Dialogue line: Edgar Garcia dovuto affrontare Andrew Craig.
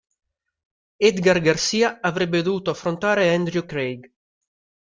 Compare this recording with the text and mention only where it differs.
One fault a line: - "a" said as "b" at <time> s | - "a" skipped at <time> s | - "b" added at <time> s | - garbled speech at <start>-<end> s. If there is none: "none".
- "avrebbe" added at 2.0 s